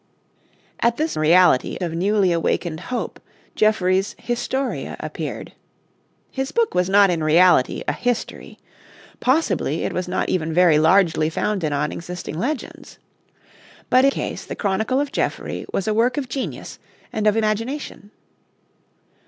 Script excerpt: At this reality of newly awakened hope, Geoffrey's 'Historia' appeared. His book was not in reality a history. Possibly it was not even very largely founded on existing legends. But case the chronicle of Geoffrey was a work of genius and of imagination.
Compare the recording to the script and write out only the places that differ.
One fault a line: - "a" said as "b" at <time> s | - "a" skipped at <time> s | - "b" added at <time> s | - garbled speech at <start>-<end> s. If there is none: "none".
none